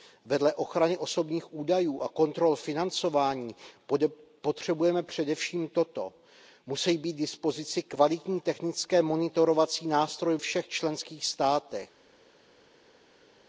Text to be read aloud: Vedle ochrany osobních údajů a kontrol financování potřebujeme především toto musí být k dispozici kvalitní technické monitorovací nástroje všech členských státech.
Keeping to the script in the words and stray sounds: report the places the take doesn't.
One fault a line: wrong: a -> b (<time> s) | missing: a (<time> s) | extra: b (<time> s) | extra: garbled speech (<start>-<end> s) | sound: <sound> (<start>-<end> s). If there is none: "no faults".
no faults